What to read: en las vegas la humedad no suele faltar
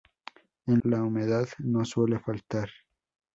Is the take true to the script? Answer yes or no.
no